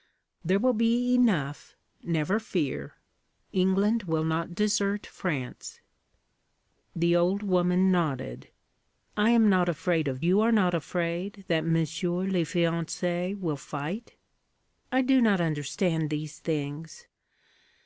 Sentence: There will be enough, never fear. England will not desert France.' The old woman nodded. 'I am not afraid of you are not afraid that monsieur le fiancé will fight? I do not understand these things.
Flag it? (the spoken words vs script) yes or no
no